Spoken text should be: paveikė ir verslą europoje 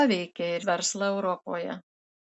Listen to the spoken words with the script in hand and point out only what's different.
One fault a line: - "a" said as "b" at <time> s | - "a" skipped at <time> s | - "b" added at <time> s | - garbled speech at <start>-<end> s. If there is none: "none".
none